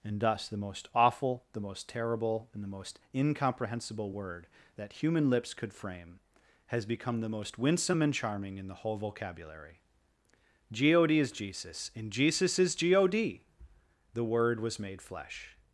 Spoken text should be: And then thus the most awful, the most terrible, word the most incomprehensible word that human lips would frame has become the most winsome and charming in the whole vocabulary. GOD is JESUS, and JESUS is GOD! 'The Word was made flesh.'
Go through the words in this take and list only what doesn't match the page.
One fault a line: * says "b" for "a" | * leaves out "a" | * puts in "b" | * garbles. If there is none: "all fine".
* leaves out "then"
* says "and" for "word"
* says "could" for "would"